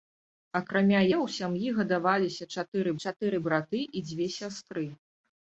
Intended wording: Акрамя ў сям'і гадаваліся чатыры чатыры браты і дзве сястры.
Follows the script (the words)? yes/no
yes